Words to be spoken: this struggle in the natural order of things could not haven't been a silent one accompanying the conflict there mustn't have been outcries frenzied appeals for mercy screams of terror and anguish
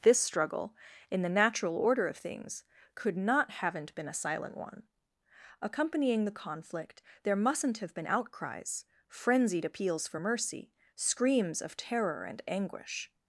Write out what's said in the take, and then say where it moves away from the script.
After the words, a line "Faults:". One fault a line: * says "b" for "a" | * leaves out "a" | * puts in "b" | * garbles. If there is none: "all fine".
this struggle in the natural order of things could not haven't been a silent one accompanying the conflict there mustn't have been outcries frenzied appeals for mercy screams of terror and anguish
Faults:
all fine